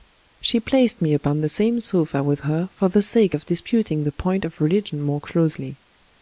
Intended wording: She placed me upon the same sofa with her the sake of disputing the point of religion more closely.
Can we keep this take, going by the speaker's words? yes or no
no